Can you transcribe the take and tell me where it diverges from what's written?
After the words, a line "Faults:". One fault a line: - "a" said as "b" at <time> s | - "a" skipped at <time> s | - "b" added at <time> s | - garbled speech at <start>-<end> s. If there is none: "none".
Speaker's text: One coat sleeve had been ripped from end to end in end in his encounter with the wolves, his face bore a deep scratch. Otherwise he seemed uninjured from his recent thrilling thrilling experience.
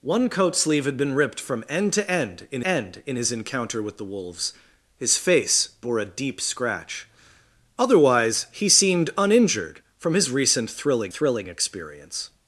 One coat sleeve had been ripped from end to end in end in his encounter with the wolves, his face bore a deep scratch. Otherwise he seemed uninjured from his recent thrilling thrilling experience.
Faults:
none